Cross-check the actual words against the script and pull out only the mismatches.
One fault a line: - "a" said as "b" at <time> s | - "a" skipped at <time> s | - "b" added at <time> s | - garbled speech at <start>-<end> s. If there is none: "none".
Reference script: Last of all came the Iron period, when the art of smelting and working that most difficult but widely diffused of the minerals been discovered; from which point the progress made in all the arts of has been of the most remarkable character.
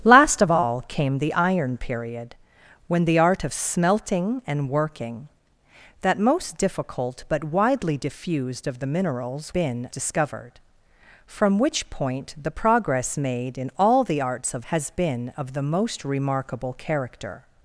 none